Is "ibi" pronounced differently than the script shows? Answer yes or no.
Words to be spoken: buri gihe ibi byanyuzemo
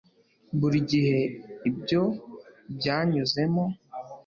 yes